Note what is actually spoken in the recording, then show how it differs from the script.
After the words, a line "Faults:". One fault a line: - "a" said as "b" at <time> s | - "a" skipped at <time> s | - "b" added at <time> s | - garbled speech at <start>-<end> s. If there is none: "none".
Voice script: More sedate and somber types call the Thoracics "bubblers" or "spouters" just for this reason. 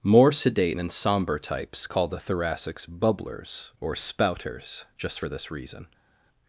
More sedate and somber types call the Thoracics "bubblers" or "spouters" just for this reason.
Faults:
none